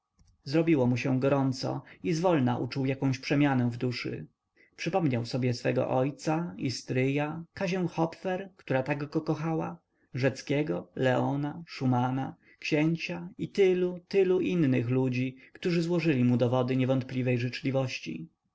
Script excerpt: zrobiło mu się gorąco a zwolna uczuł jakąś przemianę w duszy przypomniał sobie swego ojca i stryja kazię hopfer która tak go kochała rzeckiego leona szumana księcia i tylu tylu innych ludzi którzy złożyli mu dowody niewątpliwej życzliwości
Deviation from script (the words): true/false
true